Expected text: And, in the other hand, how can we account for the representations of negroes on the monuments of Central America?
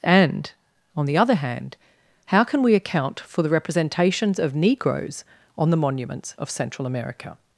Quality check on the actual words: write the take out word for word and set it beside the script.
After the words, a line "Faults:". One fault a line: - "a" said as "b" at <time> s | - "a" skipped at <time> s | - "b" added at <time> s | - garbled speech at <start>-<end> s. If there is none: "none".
And, on the other hand, how can we account for the representations of negroes on the monuments of Central America?
Faults:
- "in" said as "on" at 0.9 s